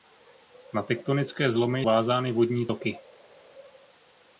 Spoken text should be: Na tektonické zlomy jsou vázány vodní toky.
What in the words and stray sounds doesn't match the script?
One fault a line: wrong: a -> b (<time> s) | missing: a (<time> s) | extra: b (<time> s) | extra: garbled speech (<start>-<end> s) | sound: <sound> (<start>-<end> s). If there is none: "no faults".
missing: jsou (1.8 s)